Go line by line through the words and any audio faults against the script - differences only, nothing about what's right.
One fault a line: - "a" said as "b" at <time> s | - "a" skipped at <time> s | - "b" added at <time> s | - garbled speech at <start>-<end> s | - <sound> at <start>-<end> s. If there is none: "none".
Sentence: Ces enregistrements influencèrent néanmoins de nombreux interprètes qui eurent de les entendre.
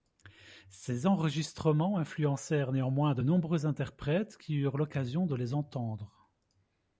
- "l'occasion" added at 4.8 s